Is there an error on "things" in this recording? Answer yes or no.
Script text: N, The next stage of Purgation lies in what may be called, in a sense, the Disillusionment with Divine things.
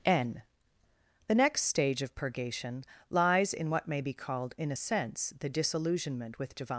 yes